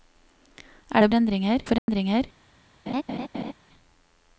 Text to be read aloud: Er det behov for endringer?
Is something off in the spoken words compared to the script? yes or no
yes